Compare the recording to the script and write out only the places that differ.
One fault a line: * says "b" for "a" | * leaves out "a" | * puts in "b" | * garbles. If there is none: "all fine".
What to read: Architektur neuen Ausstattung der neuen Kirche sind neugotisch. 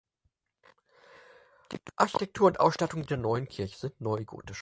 * says "und" for "neuen"